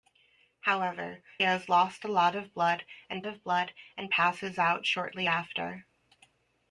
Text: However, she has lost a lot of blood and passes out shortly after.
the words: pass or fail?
fail